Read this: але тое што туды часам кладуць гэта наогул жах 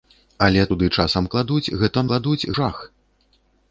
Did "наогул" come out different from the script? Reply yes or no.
yes